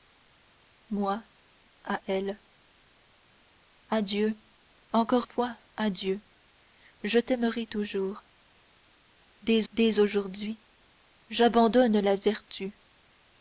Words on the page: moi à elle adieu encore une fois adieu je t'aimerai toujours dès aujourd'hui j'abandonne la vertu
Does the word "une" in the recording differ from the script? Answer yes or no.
yes